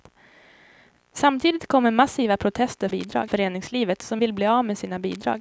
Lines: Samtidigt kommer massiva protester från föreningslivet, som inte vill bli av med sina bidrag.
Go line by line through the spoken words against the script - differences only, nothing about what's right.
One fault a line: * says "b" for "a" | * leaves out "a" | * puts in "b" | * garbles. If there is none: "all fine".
* says "bidrag" for "från"
* leaves out "inte"